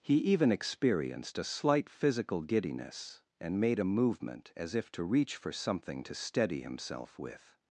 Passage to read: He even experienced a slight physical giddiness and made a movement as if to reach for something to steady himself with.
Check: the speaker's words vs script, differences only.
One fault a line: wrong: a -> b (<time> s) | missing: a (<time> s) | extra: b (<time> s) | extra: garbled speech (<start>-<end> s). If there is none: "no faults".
no faults